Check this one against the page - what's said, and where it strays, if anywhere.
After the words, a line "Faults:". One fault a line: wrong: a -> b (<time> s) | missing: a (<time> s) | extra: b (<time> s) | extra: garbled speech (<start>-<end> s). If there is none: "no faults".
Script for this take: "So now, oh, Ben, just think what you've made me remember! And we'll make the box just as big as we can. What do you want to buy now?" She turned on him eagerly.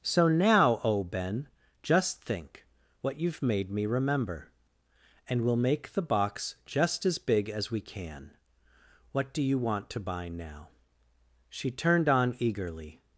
"So now, oh, Ben, just think what you've made me remember! And we'll make the box just as big as we can. What do you want to buy now?" She turned on eagerly.
Faults:
missing: him (12.4 s)